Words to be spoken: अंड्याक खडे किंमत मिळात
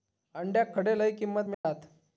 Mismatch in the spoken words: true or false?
true